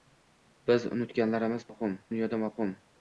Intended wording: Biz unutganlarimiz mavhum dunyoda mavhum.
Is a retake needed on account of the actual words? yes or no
no